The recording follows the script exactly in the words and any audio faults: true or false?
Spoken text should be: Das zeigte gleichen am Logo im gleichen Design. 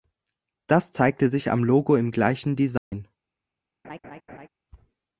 false